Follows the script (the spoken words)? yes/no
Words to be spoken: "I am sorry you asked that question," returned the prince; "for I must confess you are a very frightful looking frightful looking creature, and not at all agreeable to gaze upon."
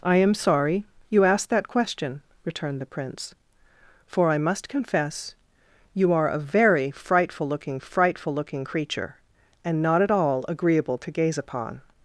yes